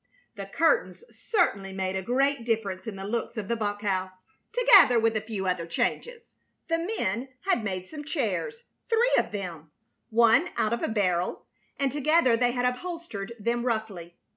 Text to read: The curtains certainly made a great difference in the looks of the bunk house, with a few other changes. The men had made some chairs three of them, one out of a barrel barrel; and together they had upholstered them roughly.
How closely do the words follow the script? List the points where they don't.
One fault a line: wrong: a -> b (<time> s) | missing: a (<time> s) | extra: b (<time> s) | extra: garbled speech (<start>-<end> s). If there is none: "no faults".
extra: together (4.5 s)
missing: barrel (11.4 s)